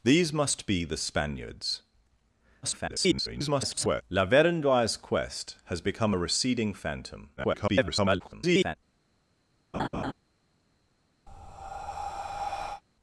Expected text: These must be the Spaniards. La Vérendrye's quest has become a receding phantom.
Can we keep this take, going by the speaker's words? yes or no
no